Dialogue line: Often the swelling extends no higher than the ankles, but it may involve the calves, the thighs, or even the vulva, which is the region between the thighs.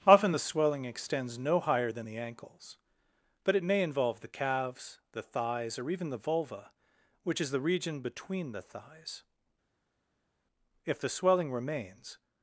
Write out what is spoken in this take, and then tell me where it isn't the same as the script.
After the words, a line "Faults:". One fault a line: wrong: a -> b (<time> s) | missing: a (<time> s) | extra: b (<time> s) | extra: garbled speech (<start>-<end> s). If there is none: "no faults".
Often the swelling extends no higher than the ankles, but it may involve the calves, the thighs, or even the vulva, which is the region between the thighs. If the swelling remains
Faults:
extra: If the swelling remains (10.8 s)